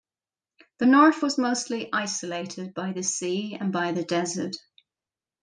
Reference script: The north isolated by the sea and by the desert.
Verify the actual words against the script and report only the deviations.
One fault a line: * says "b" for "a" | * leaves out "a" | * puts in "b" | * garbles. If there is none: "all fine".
* puts in "was mostly"